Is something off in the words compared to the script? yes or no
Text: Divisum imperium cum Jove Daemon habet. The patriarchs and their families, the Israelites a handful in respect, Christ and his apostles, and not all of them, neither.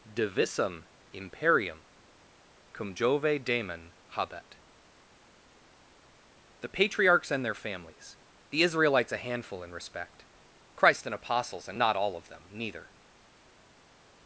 yes